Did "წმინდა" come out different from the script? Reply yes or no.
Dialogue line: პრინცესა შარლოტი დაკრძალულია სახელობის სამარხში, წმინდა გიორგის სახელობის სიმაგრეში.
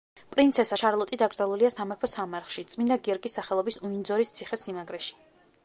no